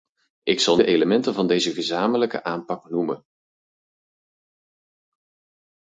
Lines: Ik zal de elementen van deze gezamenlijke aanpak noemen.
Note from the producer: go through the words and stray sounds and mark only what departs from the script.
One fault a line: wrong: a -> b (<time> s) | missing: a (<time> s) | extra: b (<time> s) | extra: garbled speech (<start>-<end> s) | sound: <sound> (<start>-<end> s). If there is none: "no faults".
no faults